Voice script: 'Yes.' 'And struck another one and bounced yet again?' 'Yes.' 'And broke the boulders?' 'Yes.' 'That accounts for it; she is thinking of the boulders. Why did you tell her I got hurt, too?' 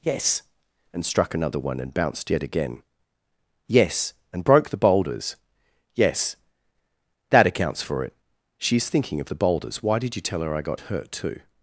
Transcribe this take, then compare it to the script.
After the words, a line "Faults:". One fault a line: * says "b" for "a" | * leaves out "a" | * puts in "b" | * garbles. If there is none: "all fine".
'Yes.' 'And struck another one and bounced yet again?' 'Yes.' 'And broke the boulders?' 'Yes.' 'That accounts for it; she is thinking of the boulders. Why did you tell her I got hurt, too?'
Faults:
all fine